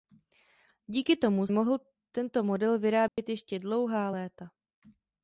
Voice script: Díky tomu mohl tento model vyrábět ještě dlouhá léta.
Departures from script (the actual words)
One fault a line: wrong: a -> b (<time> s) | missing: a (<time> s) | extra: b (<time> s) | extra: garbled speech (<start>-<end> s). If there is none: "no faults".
no faults